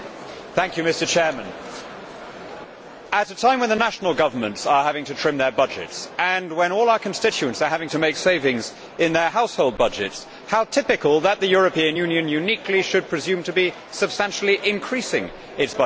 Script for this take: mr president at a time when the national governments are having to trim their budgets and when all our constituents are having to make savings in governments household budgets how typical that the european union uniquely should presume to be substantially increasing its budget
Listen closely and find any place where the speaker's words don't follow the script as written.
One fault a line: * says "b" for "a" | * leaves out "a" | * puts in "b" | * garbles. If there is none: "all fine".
* says "their" for "governments"